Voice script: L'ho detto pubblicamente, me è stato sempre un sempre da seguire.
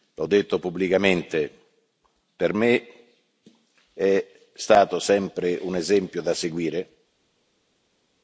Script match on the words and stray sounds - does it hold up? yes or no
no